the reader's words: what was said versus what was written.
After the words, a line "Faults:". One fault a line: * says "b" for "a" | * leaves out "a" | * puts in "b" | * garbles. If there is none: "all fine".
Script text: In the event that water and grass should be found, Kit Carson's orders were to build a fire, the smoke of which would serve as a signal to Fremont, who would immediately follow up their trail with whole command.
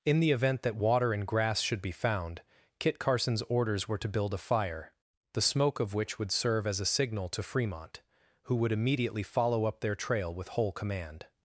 In the event that water and grass should be found, Kit Carson's orders were to build a fire, the smoke of which would serve as a signal to Fremont, who would immediately follow up their trail with whole command.
Faults:
all fine